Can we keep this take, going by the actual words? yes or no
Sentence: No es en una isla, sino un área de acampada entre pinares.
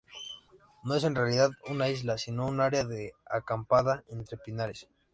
no